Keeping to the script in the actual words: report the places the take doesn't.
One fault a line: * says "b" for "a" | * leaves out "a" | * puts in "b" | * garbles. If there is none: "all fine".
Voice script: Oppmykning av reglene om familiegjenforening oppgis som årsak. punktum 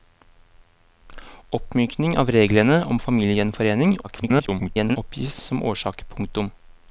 * garbles